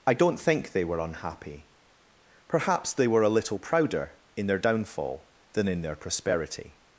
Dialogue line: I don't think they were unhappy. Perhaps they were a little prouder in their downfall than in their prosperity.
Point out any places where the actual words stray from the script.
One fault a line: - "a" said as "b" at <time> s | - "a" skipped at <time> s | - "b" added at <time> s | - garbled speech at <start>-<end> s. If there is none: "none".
none